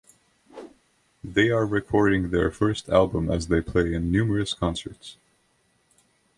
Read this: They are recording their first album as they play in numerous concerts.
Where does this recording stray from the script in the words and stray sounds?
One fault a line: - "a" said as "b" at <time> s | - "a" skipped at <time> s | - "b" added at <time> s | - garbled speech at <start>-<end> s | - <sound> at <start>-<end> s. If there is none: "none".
- whoosh at 0.5-0.8 s